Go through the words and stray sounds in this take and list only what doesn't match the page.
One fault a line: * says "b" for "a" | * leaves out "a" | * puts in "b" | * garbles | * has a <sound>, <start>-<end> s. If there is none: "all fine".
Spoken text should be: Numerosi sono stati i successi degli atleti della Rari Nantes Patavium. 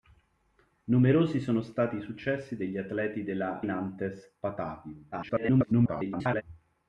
* leaves out "Rari"
* garbles